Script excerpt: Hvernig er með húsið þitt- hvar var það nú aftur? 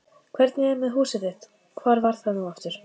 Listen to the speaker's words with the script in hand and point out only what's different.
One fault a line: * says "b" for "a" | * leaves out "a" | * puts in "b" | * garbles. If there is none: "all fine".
all fine